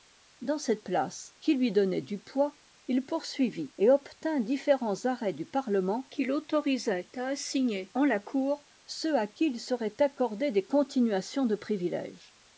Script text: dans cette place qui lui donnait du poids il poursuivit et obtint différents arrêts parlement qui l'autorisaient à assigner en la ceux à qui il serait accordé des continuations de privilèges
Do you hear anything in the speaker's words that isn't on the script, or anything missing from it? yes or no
yes